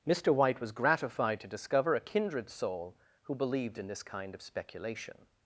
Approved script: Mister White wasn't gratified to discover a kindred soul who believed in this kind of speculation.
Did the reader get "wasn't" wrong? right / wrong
wrong